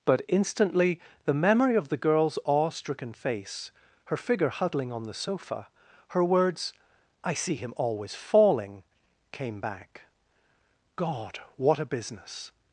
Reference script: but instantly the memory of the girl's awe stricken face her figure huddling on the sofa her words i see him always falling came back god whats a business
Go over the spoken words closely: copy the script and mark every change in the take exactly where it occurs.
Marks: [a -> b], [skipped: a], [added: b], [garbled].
but instantly the memory of the girl's awe stricken face her figure huddling on the sofa her words i see him always falling came back god [whats -> what] a business